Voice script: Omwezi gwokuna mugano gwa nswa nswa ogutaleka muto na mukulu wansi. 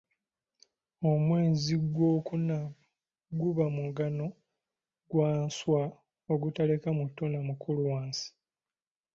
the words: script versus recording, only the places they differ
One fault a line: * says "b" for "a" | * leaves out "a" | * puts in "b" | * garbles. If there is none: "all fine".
* puts in "guba"
* leaves out "nswa"